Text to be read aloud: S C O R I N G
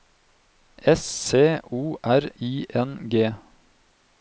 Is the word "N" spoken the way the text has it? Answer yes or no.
yes